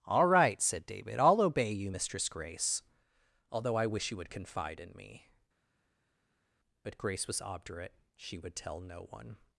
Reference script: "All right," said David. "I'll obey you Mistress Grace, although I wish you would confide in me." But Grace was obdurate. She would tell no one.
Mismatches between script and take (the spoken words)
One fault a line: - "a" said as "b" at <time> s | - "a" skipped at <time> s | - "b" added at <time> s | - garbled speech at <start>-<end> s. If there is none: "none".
none